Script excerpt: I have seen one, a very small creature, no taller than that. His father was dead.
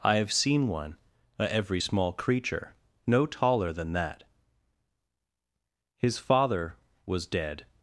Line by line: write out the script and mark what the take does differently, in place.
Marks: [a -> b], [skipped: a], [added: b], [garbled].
I have seen one, a [very -> every] small creature, no taller than that. His father was dead.